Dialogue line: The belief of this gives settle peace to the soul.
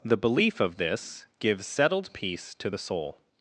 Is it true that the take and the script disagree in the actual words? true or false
true